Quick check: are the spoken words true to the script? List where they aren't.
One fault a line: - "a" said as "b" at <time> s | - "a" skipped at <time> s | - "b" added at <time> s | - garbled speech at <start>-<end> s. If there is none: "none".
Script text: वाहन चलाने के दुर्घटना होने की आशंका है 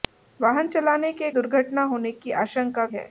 none